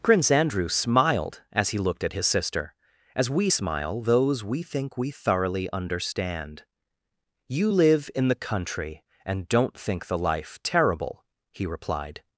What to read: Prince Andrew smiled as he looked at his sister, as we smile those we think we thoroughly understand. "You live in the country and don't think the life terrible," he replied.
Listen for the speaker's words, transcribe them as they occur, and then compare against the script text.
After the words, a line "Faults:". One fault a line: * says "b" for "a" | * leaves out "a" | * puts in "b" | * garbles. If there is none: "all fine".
Prince Andrew smiled as he looked at his sister, as we smile those we think we thoroughly understand. "You live in the country and don't think the life terrible," he replied.
Faults:
all fine